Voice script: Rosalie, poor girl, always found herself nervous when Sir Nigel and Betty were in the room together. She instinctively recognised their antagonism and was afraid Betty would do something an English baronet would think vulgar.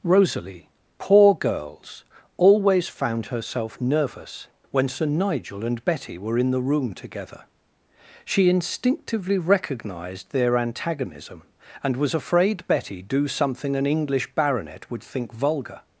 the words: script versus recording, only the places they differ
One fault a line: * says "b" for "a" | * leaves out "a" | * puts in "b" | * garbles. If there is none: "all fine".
* says "girls" for "girl"
* leaves out "would"